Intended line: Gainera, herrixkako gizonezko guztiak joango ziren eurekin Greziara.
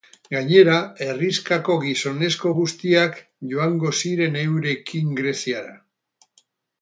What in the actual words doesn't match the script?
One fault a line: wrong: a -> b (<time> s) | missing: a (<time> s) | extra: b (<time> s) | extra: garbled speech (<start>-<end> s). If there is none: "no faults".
no faults